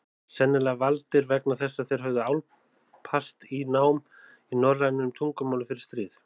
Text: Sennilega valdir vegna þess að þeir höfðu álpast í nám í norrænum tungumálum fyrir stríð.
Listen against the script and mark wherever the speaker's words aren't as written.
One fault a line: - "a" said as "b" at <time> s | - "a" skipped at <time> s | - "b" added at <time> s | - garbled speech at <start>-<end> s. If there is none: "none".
none